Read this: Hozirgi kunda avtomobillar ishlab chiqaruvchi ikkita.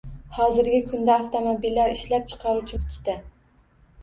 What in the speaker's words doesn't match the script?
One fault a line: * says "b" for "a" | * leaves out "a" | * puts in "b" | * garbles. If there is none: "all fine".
all fine